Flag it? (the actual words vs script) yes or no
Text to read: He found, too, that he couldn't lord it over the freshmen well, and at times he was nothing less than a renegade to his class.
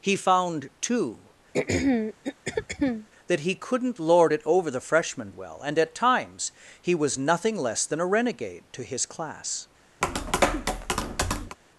no